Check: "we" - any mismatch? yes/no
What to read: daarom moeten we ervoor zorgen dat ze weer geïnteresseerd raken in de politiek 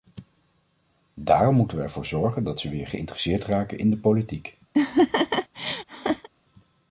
no